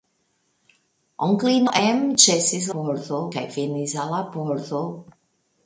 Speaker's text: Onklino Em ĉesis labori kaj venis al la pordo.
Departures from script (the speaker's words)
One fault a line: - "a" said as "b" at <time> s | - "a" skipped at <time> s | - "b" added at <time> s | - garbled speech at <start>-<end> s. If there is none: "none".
- "labori" said as "pordo" at 2.8 s